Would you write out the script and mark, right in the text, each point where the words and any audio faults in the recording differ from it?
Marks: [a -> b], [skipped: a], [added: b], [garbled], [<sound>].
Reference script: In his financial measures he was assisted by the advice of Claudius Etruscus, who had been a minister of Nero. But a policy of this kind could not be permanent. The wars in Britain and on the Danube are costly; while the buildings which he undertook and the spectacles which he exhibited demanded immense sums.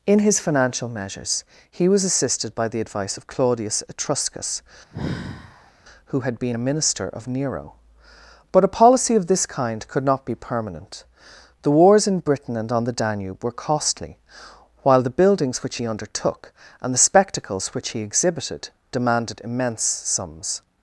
In his financial measures he was assisted by the advice of Claudius Etruscus, [sigh] who had been a minister of Nero. But a policy of this kind could not be permanent. The wars in Britain and on the Danube [are -> were] costly; while the buildings which he undertook and the spectacles which he exhibited demanded immense sums.